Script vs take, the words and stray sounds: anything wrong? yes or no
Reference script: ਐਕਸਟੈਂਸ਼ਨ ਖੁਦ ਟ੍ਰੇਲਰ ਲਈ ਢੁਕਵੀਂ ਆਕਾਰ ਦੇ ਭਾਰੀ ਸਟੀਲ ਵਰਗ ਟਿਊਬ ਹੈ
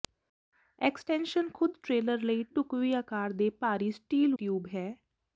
yes